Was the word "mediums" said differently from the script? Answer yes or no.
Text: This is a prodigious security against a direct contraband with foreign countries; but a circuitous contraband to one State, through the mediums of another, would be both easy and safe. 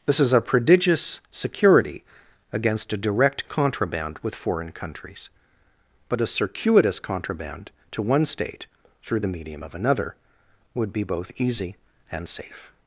yes